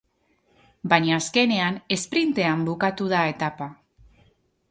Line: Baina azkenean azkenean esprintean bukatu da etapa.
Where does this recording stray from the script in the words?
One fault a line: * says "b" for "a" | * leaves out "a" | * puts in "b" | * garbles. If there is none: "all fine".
* leaves out "azkenean"